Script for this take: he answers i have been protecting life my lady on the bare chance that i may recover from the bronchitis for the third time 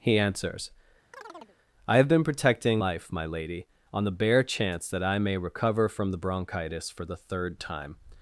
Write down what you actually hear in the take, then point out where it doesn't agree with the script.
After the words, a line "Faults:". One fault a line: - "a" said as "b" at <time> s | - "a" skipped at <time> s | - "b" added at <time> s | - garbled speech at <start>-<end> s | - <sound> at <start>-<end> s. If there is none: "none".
he answers i have been protecting life my lady on the bare chance that i may recover from the bronchitis for the third time
Faults:
- chirp at 1.1-1.6 s